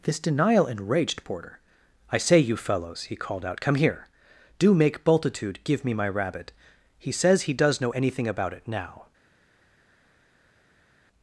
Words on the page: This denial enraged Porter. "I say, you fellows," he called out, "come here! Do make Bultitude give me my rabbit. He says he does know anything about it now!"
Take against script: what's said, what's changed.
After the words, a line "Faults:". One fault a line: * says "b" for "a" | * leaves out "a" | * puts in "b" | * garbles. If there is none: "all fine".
This denial enraged Porter. "I say, you fellows," he called out, "come here! Do make Bultitude give me my rabbit. He says he does know anything about it now!"
Faults:
all fine